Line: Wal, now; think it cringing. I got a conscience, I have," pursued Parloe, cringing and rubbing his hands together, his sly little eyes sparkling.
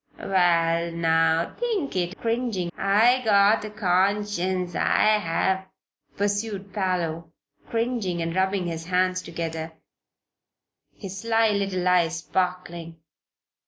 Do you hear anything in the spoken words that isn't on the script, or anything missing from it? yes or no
no